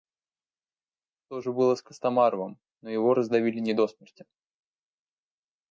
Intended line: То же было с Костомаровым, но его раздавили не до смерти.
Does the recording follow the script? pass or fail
pass